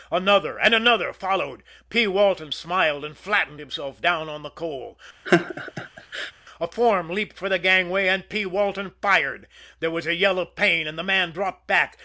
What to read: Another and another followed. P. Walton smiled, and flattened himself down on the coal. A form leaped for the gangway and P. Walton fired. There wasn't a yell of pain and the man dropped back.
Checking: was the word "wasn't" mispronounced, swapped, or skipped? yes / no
yes